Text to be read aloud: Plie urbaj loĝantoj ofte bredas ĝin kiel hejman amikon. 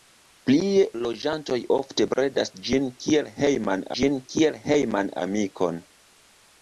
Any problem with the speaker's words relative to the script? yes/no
yes